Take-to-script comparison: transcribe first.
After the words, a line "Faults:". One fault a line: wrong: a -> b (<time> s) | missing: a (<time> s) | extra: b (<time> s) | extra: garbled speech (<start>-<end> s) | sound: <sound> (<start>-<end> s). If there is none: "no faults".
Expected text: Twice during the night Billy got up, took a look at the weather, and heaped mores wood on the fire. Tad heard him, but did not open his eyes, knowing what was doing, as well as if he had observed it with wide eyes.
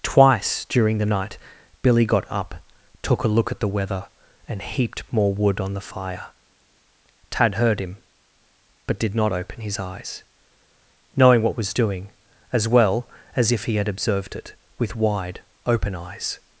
Twice during the night Billy got up, took a look at the weather, and heaped more wood on the fire. Tad heard him, but did not open his eyes, knowing what was doing, as well as if he had observed it with wide open eyes.
Faults:
wrong: mores -> more (5.1 s)
extra: open (15.7 s)